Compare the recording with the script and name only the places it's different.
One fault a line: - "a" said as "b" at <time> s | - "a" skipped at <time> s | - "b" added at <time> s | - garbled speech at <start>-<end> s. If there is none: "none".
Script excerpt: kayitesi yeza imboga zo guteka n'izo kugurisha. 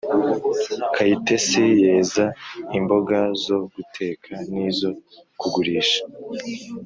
none